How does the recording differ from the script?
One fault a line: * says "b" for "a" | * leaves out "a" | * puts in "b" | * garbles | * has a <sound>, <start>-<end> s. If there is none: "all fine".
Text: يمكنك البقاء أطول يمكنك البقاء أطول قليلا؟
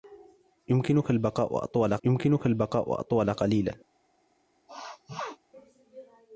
* has a sneeze, 4.7-5.4 s